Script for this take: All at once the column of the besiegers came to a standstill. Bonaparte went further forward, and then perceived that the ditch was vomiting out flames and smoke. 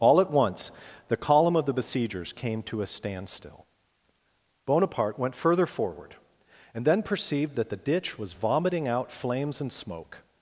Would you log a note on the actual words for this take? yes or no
no